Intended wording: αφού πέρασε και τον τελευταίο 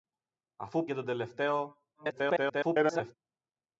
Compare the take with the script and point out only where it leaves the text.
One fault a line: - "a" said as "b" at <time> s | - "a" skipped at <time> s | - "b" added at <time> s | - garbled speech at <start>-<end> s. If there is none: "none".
- "πέρασε" skipped at 0.9 s
- garbled speech at 1.9-3.1 s